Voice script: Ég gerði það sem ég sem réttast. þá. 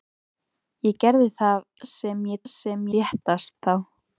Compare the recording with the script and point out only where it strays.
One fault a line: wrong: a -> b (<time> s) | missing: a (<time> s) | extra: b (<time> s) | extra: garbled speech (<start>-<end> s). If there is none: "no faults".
no faults